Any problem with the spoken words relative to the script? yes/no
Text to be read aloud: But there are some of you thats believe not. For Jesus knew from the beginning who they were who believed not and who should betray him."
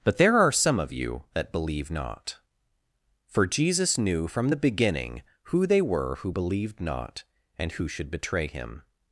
yes